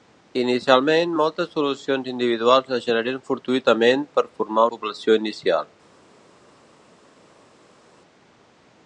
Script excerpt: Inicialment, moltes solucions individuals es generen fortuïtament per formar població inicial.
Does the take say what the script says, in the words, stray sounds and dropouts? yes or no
yes